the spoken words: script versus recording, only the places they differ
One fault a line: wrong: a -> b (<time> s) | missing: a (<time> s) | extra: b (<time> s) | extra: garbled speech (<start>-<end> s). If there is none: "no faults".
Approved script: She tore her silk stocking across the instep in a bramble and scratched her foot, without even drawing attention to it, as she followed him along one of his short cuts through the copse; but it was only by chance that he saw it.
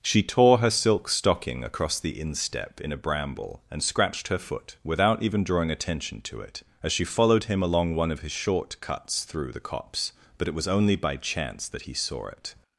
no faults